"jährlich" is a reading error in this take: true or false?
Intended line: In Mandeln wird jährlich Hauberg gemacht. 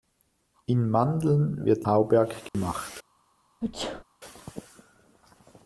true